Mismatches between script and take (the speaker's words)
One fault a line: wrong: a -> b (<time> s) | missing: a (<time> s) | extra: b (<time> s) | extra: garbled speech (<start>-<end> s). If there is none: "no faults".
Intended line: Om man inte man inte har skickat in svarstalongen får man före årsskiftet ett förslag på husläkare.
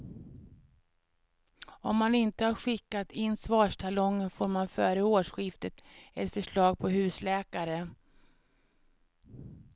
missing: man inte (2.5 s)